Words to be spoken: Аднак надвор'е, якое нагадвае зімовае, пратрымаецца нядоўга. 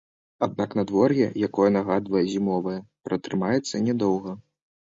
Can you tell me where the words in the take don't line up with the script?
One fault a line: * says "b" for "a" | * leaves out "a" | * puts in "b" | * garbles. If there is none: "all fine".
all fine